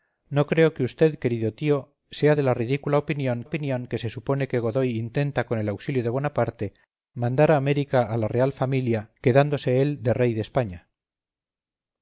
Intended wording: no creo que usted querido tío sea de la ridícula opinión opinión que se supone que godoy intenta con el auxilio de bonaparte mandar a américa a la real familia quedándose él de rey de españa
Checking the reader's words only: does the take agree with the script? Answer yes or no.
yes